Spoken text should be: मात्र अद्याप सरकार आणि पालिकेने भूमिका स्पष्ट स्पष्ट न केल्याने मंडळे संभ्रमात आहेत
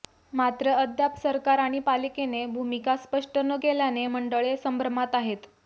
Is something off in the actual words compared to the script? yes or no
yes